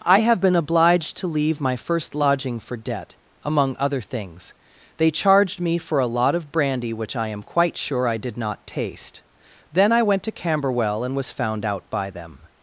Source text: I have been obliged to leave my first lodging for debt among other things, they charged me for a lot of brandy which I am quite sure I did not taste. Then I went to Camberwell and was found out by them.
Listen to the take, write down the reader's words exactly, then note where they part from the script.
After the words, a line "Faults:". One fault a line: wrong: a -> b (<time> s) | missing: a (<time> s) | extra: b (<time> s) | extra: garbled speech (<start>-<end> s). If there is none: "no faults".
I have been obliged to leave my first lodging for debt among other things, they charged me for a lot of brandy which I am quite sure I did not taste. Then I went to Camberwell and was found out by them.
Faults:
no faults